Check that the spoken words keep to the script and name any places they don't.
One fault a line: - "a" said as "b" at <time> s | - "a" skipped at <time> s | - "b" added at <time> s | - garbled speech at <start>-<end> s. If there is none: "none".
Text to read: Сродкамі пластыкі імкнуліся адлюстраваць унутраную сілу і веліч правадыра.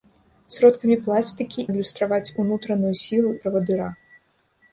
- "імкнуліся" skipped at 1.7 s
- "і веліч" skipped at 3.3 s